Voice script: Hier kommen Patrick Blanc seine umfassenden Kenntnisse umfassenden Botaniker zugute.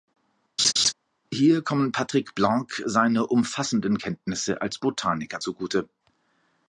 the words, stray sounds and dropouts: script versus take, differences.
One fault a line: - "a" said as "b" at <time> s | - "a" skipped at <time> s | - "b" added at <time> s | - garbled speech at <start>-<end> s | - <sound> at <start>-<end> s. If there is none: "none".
- laugh at 0.6-0.9 s
- "umfassenden" said as "als" at 4.6 s